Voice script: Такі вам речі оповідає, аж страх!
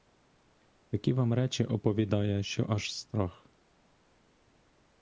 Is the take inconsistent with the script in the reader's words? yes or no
yes